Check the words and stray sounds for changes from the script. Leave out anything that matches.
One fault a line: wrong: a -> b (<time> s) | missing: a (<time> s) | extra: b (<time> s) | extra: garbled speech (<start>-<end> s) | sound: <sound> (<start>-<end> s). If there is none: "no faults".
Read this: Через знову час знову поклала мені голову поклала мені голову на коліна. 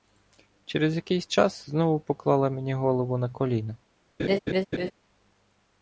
wrong: знову -> якийсь (0.9 s)
missing: поклала мені голову (3.2 s)
sound: laugh (4.2-4.9 s)